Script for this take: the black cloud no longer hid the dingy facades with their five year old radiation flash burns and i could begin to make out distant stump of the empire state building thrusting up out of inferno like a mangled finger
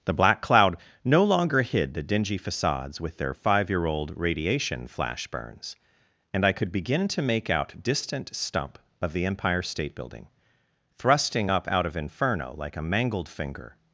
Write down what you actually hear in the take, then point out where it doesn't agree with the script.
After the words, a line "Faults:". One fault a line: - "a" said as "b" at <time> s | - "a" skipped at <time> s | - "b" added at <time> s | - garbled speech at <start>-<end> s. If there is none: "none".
the black cloud no longer hid the dingy facades with their five year old radiation flash burns and i could begin to make out distant stump of the empire state building thrusting up out of inferno like a mangled finger
Faults:
none